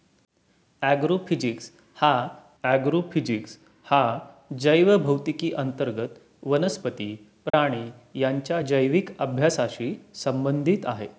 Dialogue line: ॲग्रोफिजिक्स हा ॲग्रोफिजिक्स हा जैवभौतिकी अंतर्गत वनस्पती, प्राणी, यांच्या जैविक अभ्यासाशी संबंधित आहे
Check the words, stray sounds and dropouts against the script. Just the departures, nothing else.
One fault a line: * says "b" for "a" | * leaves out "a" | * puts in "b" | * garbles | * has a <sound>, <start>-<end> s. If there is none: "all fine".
* has a dropout, 7.5-7.5 s